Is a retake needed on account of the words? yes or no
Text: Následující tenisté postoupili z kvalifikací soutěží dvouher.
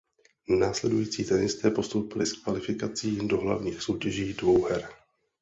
yes